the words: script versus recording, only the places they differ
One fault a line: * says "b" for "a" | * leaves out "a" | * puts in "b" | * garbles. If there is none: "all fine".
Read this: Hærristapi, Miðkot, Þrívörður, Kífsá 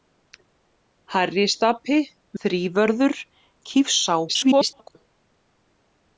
* leaves out "Miðkot"
* garbles